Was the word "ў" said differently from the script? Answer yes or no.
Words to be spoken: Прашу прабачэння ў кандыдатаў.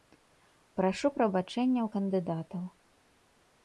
no